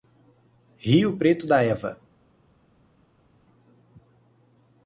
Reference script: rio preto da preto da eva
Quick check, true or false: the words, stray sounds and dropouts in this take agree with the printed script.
false